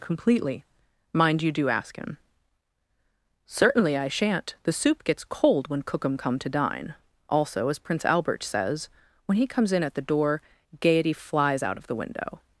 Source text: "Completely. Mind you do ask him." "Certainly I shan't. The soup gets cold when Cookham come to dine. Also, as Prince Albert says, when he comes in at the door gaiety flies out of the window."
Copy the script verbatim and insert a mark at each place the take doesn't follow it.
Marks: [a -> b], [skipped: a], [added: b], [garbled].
"Completely. Mind you do ask him." "Certainly I shan't. The soup gets cold when Cookham come to dine. Also, as Prince Albert says, when he comes in at the door gaiety flies out of the window."